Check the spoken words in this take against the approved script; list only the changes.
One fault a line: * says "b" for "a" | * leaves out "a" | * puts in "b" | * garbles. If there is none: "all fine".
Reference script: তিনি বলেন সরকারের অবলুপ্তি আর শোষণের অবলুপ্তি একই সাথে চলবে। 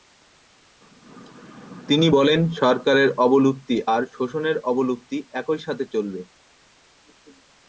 all fine